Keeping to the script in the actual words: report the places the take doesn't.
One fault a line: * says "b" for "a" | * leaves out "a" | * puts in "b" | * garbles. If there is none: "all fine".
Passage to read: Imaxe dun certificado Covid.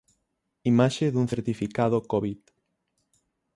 all fine